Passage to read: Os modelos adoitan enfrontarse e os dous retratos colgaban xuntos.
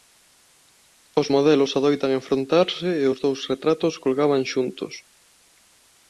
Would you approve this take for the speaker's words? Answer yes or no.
yes